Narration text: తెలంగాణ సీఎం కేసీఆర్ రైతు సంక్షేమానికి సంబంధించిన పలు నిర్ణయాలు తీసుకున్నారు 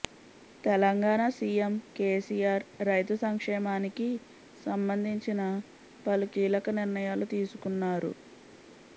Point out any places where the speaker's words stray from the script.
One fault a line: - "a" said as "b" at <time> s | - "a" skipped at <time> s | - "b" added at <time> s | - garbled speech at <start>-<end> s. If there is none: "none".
- "కీలక" added at 6.3 s